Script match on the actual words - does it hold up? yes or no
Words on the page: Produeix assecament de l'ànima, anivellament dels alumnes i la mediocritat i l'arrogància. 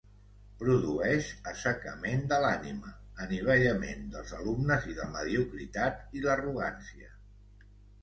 yes